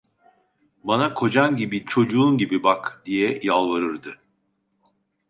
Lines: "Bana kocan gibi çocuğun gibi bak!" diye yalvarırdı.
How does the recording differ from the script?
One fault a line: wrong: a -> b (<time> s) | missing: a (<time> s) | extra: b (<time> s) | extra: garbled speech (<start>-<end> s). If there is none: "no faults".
no faults